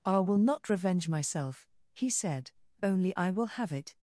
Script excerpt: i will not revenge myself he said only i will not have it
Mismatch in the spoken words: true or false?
true